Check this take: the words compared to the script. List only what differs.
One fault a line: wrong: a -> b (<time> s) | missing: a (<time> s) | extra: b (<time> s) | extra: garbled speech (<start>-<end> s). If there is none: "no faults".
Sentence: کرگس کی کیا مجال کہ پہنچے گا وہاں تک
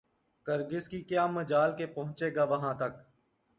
no faults